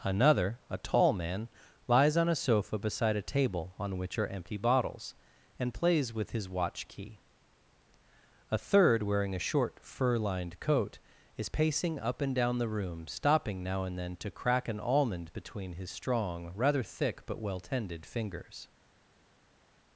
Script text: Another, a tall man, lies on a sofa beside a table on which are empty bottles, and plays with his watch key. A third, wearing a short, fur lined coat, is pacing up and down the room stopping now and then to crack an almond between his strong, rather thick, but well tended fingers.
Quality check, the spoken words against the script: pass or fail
pass